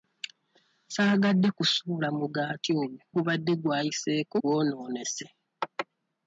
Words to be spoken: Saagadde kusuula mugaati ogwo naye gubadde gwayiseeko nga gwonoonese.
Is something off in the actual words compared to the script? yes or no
yes